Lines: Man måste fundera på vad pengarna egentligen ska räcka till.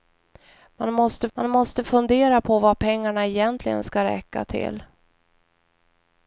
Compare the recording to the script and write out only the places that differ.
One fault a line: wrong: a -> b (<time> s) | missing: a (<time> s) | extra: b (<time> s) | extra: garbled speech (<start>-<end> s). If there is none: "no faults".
extra: man måste (1.3 s)